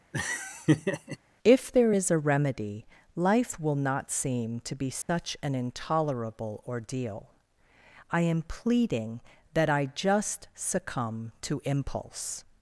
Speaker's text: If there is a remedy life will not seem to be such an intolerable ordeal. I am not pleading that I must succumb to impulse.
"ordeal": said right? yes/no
yes